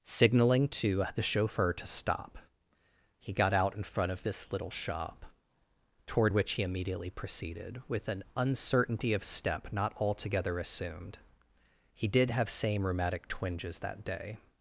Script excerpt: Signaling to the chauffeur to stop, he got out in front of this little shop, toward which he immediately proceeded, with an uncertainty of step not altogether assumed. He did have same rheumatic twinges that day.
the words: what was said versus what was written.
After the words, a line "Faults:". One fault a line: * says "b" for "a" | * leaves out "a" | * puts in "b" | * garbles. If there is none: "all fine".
Signaling to the chauffeur to stop, he got out in front of this little shop, toward which he immediately proceeded, with an uncertainty of step not altogether assumed. He did have same rheumatic twinges that day.
Faults:
all fine